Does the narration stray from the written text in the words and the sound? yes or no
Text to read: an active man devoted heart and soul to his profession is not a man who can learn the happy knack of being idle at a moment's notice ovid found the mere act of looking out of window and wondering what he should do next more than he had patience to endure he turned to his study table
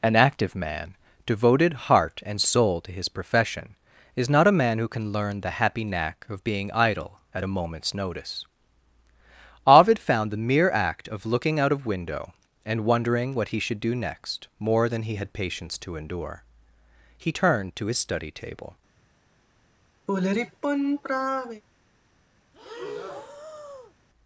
yes